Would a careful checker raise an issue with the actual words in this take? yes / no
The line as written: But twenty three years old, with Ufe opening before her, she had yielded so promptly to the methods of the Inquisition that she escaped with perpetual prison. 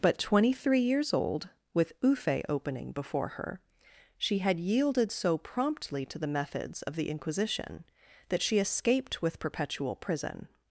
no